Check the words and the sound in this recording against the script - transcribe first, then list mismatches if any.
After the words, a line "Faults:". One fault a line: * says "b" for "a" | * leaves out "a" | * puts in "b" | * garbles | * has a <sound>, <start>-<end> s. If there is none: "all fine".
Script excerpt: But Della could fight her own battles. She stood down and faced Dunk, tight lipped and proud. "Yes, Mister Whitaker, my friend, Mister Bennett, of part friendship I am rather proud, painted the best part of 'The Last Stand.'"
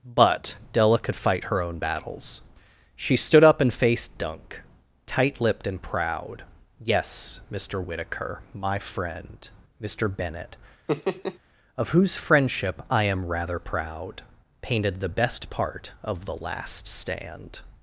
But Della could fight her own battles. She stood up and faced Dunk, tight lipped and proud. "Yes, Mister Whitaker, my friend, Mister Bennett, of whose friendship I am rather proud, painted the best part of 'The Last Stand.'"
Faults:
* says "up" for "down"
* has a laugh, 10.9-11.4 s
* says "whose" for "part"